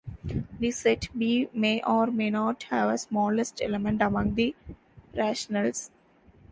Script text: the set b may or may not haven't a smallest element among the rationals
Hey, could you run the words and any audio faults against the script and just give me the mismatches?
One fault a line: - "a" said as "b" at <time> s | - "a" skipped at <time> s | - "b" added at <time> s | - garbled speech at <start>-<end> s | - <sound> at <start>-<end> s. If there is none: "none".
- "haven't" said as "have" at 2.7 s